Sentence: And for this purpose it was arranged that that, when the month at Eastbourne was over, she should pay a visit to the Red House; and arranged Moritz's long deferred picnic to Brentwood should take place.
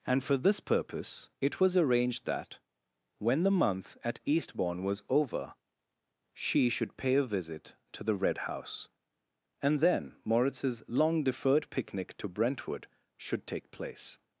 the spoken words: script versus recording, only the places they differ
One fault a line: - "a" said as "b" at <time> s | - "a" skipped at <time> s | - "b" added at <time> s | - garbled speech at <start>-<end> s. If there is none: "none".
- "that" skipped at 2.6 s
- "arranged" said as "then" at 9.8 s